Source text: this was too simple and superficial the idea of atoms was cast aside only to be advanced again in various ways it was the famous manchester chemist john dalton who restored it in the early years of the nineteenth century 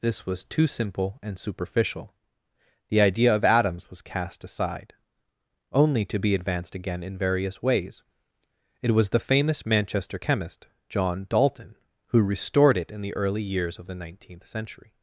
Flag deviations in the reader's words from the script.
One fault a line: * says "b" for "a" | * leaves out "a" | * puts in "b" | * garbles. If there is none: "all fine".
all fine